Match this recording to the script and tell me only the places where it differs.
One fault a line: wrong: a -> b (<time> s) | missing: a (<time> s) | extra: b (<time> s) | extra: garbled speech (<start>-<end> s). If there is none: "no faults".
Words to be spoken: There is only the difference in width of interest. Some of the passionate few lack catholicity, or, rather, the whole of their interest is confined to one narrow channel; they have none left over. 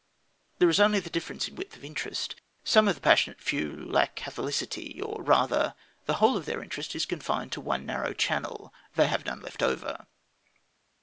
no faults